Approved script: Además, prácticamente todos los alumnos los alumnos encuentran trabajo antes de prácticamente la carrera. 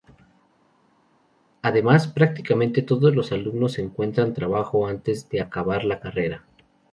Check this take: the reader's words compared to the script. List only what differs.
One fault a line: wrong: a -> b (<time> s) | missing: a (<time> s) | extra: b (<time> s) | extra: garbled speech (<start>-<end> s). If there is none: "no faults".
missing: los alumnos (3.8 s)
wrong: prácticamente -> acabar (5.4 s)